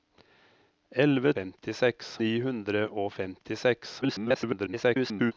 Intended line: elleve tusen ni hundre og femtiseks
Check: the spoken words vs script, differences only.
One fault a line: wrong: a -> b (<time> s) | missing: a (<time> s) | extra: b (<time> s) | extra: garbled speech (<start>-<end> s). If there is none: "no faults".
wrong: tusen -> femtiseks (1.4 s)
extra: garbled speech (4.0-5.3 s)